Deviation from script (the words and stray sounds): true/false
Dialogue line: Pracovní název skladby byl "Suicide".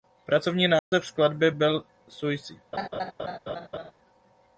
true